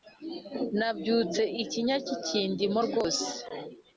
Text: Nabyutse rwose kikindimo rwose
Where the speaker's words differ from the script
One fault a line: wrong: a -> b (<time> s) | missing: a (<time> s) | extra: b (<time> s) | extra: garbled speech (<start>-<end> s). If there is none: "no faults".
wrong: rwose -> ikinya (1.6 s)